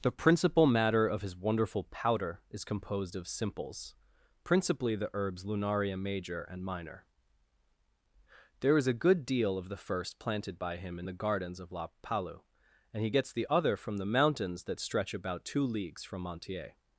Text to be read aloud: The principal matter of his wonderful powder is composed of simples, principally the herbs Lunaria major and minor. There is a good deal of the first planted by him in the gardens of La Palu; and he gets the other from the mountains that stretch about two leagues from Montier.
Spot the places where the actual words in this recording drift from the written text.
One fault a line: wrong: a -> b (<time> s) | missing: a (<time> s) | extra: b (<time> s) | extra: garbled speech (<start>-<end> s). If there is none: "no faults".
no faults